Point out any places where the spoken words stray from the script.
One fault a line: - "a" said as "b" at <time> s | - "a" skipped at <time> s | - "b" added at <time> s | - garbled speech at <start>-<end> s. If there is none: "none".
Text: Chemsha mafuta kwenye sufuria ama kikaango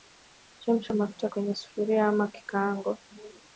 none